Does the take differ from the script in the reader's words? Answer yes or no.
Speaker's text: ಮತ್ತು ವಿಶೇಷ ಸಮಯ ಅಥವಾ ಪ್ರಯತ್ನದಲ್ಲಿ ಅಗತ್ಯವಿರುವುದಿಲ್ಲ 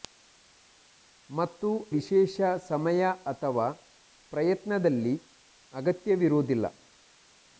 no